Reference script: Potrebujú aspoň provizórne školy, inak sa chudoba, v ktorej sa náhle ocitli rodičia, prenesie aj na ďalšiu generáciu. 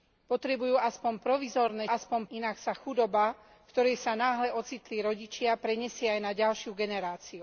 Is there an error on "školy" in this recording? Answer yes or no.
yes